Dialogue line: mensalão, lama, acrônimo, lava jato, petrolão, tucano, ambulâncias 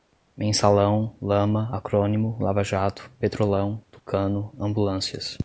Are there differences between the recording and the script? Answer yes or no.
no